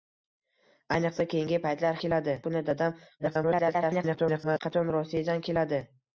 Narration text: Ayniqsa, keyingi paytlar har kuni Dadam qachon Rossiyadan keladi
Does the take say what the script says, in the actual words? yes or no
no